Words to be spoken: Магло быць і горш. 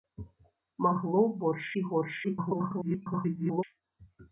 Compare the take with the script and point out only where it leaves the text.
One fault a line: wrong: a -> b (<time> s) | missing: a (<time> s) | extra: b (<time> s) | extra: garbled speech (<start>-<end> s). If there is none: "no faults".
wrong: быць -> горш (1.4 s)
extra: garbled speech (2.2-3.6 s)